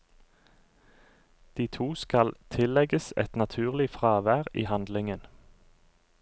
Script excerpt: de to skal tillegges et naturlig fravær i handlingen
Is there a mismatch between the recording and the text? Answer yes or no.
no